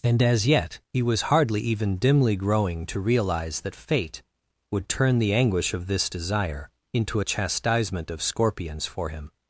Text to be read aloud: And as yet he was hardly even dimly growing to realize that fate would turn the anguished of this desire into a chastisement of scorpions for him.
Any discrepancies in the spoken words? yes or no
yes